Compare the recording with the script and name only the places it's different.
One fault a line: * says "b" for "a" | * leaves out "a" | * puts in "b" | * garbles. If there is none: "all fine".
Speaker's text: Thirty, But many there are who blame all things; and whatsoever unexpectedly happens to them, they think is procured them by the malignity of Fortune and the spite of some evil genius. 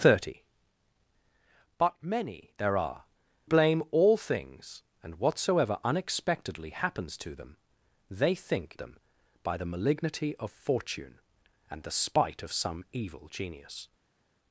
* leaves out "who"
* leaves out "is procured"